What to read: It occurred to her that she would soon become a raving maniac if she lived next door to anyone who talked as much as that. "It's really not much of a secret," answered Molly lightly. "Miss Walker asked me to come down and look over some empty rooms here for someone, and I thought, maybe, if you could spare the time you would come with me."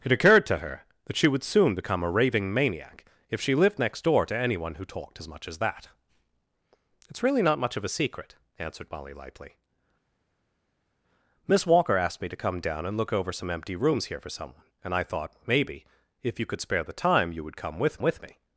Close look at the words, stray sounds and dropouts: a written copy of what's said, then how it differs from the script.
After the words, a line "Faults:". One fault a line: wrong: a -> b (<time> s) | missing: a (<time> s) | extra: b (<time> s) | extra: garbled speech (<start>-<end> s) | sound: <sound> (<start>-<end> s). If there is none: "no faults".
It occurred to her that she would soon become a raving maniac if she lived next door to anyone who talked as much as that. "It's really not much of a secret," answered Molly lightly. "Miss Walker asked me to come down and look over some empty rooms here for someone, and I thought, maybe, if you could spare the time you would come with with me."
Faults:
extra: with (18.0 s)